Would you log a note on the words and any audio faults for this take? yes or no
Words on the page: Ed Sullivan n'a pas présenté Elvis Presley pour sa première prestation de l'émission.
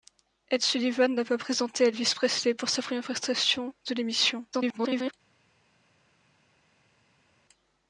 yes